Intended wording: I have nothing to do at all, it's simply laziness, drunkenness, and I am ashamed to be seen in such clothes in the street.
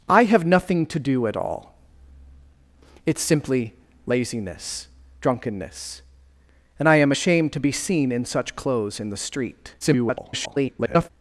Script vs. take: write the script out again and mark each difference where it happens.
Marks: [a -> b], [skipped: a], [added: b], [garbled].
I have nothing to do at all, it's simply laziness, drunkenness, and I am ashamed to be seen in such clothes in the street. [garbled]